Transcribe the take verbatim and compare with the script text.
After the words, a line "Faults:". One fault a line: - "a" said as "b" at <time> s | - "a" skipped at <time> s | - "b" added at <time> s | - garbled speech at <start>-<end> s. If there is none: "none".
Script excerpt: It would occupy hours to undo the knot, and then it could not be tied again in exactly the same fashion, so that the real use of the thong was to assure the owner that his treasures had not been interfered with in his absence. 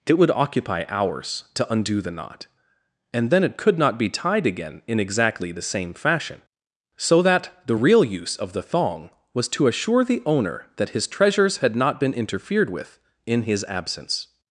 It would occupy hours to undo the knot, and then it could not be tied again in exactly the same fashion, so that the real use of the thong was to assure the owner that his treasures had not been interfered with in his absence.
Faults:
none